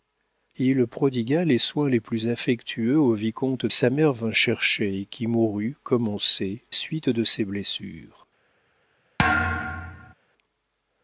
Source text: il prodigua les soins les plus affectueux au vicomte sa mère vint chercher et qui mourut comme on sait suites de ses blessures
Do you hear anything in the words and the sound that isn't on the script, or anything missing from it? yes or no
yes